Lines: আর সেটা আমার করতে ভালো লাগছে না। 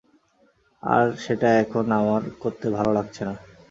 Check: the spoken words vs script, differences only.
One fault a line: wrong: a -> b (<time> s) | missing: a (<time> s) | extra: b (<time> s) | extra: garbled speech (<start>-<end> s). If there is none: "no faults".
extra: এখন (1.6 s)